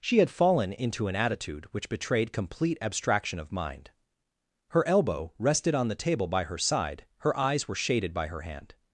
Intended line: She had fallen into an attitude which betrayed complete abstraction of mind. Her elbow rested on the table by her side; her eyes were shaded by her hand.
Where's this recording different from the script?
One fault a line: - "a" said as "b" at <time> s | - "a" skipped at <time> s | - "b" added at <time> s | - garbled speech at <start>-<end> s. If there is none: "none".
none